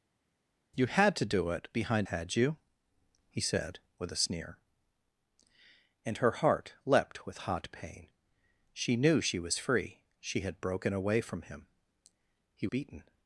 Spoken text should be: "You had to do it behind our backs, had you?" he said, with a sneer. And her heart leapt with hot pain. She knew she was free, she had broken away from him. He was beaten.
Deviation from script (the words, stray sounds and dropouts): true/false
true